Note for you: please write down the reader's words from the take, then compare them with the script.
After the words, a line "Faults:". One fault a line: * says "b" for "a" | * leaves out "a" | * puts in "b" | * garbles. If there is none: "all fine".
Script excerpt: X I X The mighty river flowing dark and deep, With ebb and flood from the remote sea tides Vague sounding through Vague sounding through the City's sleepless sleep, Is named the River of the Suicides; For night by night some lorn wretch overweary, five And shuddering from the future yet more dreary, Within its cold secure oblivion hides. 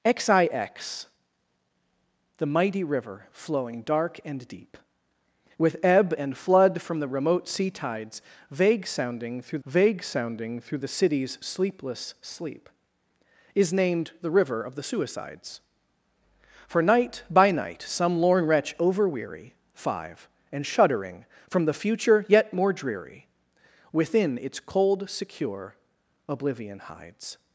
X I X The mighty river flowing dark and deep, With ebb and flood from the remote sea tides Vague sounding through Vague sounding through the City's sleepless sleep, Is named the River of the Suicides; For night by night some lorn wretch overweary, five And shuddering from the future yet more dreary, Within its cold secure oblivion hides.
Faults:
all fine